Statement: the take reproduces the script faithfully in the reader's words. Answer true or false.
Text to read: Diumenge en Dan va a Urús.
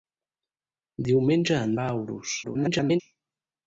false